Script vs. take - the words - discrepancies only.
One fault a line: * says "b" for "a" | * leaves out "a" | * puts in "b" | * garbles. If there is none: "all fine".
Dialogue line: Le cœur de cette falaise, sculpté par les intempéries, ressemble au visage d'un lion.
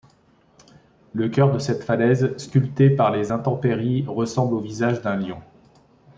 all fine